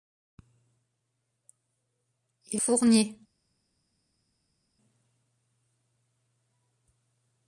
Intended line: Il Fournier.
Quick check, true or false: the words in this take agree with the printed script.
true